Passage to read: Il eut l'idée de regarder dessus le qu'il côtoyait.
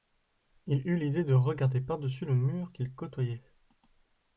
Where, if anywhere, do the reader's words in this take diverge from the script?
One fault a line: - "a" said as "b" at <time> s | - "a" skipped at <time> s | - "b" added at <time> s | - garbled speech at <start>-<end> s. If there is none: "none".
- "par" added at 1.8 s
- "mur" added at 2.3 s